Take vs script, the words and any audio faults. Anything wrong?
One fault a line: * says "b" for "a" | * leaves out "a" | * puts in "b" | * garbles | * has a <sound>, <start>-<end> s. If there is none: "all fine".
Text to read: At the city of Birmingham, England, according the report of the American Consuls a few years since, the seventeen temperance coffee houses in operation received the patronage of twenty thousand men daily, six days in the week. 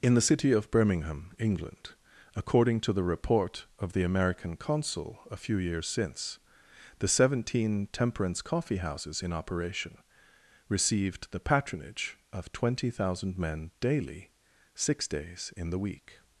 * says "In" for "At"
* puts in "to"
* says "Consul" for "Consuls"